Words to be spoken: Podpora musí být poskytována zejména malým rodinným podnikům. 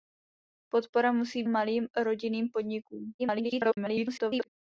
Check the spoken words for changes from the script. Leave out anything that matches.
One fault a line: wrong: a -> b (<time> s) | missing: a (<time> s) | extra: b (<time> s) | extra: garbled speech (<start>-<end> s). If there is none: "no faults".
missing: být poskytována zejména (1.4 s)
extra: garbled speech (3.2-4.5 s)